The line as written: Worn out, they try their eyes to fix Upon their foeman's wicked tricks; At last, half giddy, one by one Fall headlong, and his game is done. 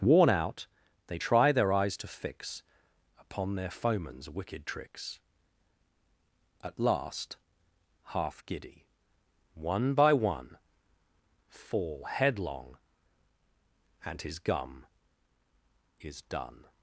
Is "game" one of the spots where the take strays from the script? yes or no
yes